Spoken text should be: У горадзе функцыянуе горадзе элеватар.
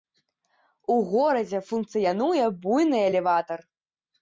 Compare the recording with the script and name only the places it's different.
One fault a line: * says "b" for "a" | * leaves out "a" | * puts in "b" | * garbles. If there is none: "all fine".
* says "буйны" for "горадзе"